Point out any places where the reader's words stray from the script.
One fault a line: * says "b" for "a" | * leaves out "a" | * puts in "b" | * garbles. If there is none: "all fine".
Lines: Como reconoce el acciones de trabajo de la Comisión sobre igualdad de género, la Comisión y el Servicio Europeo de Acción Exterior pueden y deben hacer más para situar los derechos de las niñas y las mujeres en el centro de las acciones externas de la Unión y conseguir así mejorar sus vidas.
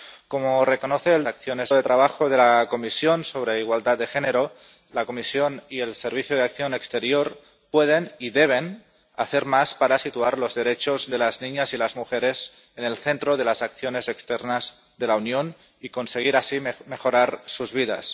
all fine